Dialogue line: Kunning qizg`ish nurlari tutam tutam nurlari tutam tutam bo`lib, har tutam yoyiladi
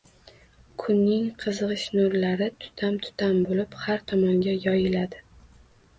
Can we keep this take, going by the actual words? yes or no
no